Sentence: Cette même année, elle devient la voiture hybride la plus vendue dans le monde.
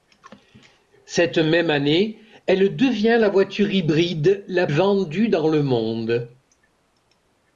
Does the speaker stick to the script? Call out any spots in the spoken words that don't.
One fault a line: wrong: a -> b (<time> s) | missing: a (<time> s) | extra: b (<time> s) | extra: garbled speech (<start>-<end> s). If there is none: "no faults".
missing: plus (4.7 s)